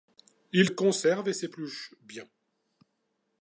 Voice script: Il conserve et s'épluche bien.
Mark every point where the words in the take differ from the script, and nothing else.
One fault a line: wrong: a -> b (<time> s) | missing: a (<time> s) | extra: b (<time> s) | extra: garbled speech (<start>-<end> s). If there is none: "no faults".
no faults